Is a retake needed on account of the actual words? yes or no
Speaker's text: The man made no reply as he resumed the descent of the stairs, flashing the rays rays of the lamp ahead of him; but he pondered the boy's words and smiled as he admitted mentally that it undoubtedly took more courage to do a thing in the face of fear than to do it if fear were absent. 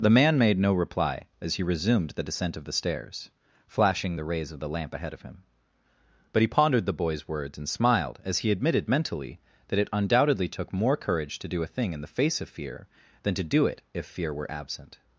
yes